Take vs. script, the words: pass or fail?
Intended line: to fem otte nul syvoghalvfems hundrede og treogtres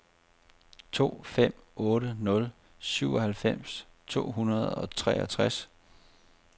fail